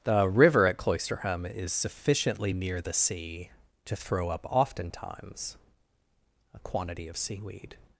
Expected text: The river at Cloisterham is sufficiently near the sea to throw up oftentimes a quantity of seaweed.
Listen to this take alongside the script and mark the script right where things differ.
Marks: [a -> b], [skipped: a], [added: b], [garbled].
The river at Cloisterham is sufficiently near the sea to throw up oftentimes a quantity of seaweed.